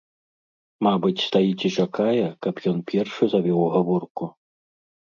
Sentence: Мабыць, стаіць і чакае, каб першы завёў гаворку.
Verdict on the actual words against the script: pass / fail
fail